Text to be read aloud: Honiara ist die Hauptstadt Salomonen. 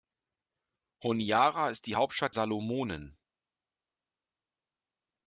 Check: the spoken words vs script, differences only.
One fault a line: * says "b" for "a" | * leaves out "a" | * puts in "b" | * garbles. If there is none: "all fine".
all fine